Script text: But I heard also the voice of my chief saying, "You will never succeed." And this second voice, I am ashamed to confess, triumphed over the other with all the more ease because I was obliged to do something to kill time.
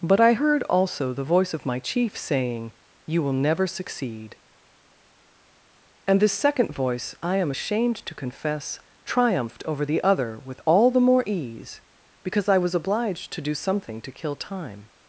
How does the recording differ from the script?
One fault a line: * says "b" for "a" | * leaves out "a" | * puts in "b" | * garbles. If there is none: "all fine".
all fine